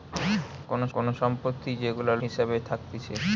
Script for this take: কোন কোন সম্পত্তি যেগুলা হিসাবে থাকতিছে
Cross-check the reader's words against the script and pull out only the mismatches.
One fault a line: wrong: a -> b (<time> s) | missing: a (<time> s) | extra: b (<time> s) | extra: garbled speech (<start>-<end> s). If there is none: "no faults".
no faults